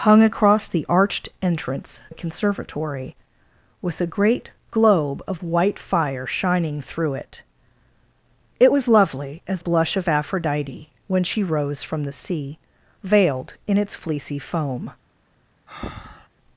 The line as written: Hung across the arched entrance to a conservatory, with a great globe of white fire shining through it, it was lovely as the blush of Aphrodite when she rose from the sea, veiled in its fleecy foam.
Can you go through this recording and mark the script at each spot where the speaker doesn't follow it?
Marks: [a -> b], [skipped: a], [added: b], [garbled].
Hung across the arched entrance [skipped: to] a conservatory, with a great globe of white fire shining through it, it was lovely as [skipped: the] blush of Aphrodite when she rose from the sea, veiled in its fleecy foam.